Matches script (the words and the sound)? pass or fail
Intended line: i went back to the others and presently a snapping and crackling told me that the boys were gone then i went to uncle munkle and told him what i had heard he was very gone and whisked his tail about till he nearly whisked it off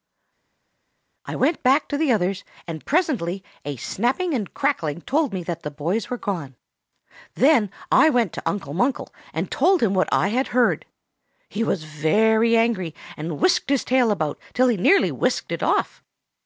fail